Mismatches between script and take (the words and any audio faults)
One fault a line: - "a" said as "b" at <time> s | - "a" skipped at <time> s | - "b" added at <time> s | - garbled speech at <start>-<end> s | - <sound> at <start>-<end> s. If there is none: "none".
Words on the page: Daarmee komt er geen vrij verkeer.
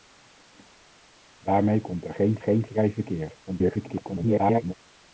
- "geen" added at 2.4 s
- garbled speech at 3.5-4.7 s